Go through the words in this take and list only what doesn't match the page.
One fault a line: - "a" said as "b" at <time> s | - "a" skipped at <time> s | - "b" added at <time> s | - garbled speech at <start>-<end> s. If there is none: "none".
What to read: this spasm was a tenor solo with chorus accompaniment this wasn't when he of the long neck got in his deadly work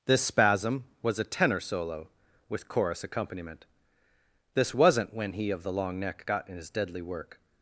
none